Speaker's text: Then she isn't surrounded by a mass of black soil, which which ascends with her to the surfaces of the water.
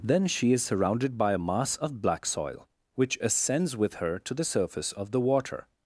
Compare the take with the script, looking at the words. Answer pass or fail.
fail